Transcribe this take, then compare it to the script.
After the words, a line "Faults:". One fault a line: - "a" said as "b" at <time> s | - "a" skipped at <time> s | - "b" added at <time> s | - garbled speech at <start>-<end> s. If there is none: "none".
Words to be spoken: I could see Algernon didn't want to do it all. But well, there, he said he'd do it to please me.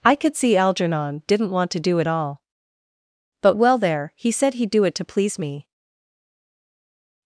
I could see Algernon didn't want to do it all. But well, there, he said he'd do it to please me.
Faults:
none